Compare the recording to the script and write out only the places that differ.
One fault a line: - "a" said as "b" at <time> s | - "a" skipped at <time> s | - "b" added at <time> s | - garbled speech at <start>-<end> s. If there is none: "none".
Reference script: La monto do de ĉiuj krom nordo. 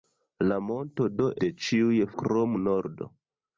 none